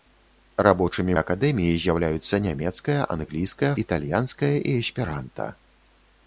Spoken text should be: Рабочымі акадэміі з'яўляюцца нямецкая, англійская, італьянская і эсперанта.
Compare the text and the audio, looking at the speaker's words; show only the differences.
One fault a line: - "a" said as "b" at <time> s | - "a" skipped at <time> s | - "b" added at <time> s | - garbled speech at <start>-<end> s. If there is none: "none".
none